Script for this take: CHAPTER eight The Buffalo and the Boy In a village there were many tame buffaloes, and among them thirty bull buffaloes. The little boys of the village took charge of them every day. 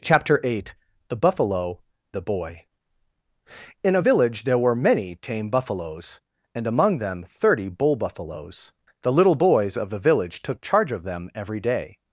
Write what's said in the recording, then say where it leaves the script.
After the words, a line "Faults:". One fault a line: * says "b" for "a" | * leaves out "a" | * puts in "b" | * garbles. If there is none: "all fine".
CHAPTER eight The Buffalo the Boy In a village there were many tame buffaloes, and among them thirty bull buffaloes. The little boys of the village took charge of them every day.
Faults:
* leaves out "and"